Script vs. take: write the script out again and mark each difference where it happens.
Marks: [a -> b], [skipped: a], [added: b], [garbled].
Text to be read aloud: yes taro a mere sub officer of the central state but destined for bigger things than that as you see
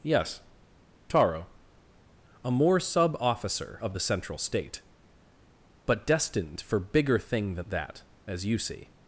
yes taro a [mere -> more] sub officer of the central state but destined for bigger [things -> thing] than that as you see